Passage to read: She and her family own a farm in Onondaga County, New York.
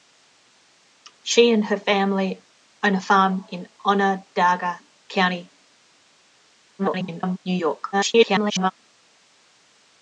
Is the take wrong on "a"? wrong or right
right